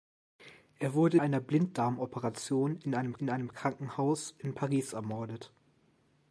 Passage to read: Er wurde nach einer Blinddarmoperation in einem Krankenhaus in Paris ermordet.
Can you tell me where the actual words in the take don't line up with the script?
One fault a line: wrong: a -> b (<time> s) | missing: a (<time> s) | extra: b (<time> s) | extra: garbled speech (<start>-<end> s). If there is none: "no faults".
missing: nach (1.2 s)
extra: in einem (3.2 s)